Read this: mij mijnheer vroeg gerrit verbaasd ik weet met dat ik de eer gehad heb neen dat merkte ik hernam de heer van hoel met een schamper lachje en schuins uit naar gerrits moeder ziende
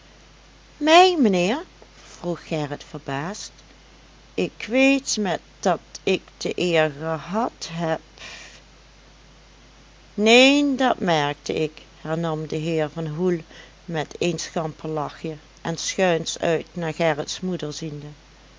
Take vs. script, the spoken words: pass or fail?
pass